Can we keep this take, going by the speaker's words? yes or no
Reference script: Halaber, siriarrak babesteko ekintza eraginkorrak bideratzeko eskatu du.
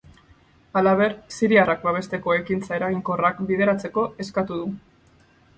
yes